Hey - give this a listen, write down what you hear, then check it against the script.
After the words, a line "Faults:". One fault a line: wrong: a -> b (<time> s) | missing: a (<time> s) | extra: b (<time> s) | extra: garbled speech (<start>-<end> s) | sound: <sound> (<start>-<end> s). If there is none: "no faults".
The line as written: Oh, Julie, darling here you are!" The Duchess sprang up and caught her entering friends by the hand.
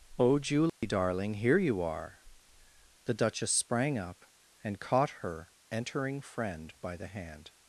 Oh, Julie, darling here you are!" The Duchess sprang up and caught her entering friend by the hand.
Faults:
sound: dropout (0.7-0.8 s)
wrong: friends -> friend (6.2 s)